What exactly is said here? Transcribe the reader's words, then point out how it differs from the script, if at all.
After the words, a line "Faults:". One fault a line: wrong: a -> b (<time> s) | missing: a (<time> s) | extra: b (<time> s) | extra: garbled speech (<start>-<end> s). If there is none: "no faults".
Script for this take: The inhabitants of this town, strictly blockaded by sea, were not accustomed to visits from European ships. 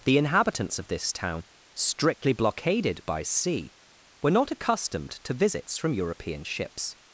The inhabitants of this town, strictly blockaded by sea, were not accustomed to visits from European ships.
Faults:
no faults